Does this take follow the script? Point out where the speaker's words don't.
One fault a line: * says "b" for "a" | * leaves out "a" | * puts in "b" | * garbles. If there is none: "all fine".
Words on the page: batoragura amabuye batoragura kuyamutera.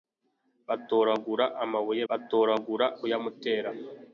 all fine